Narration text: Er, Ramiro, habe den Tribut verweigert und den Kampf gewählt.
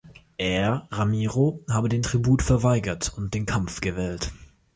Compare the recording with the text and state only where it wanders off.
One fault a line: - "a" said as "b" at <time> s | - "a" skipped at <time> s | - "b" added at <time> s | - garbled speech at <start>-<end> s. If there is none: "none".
none